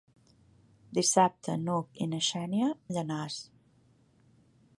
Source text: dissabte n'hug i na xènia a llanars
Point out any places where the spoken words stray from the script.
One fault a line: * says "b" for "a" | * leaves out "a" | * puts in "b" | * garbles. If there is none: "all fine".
all fine